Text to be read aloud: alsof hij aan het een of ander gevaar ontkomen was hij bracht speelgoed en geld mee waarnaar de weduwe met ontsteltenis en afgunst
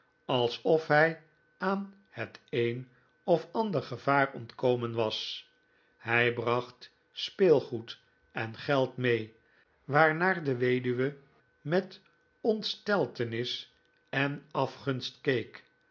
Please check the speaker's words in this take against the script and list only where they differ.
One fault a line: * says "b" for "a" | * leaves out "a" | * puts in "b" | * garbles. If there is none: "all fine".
all fine